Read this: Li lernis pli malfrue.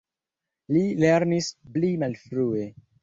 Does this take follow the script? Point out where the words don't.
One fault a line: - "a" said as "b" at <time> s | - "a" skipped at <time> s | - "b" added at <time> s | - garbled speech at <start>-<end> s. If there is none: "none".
none